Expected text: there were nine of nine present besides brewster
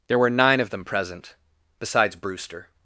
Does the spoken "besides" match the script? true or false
true